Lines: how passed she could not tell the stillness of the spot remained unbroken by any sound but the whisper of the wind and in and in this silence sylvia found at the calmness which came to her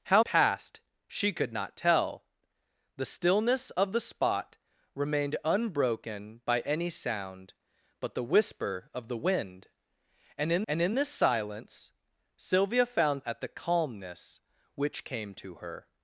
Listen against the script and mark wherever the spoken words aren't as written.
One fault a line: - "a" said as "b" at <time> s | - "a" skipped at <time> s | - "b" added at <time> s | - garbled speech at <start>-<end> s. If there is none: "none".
none